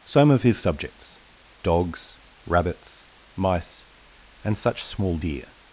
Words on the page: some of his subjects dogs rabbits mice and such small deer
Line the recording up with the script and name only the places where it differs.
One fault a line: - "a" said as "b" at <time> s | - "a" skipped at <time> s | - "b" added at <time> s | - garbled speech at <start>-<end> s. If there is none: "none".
none